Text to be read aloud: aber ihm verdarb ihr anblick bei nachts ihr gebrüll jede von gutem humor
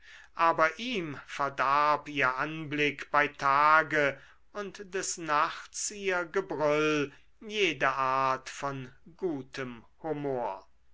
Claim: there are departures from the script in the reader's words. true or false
true